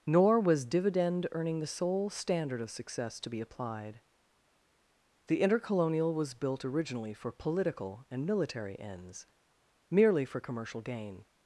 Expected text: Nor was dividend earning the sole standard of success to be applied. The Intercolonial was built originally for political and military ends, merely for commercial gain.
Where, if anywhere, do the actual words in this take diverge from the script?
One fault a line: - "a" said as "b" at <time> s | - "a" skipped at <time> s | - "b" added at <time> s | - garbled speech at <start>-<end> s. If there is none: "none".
none